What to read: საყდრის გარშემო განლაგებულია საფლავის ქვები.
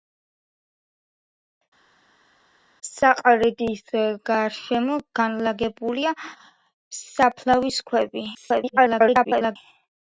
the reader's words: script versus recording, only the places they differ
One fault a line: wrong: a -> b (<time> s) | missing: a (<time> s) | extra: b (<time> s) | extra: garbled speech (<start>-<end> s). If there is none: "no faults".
extra: garbled speech (8.3-9.6 s)